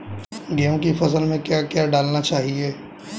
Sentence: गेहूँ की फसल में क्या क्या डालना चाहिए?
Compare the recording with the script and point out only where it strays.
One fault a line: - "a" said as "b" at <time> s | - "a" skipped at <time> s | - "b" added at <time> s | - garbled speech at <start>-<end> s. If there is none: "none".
none